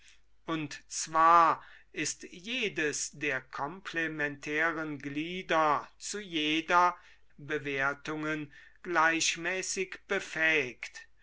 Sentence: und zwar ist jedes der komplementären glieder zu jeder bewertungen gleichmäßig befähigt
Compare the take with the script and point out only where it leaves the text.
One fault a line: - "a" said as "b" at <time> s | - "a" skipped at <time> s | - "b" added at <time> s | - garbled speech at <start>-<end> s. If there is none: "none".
none